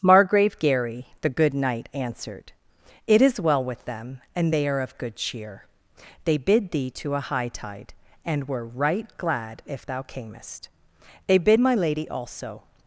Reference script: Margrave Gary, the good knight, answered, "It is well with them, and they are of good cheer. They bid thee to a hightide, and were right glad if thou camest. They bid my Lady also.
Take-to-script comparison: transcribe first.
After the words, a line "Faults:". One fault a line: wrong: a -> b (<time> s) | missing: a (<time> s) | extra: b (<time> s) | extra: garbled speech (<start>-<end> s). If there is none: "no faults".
Margrave Gary, the good knight, answered, "It is well with them, and they are of good cheer. They bid thee to a hightide, and were right glad if thou camest. They bid my Lady also.
Faults:
no faults